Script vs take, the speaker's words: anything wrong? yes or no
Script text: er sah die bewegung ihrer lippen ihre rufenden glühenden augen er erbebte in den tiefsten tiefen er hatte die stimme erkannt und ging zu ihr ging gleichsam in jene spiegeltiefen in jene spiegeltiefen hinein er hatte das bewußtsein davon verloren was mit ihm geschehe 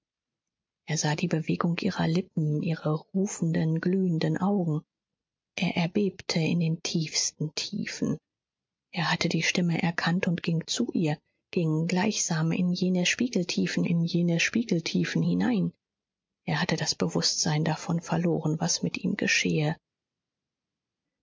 no